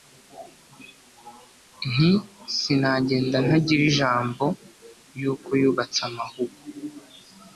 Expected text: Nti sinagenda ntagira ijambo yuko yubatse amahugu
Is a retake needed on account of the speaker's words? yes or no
no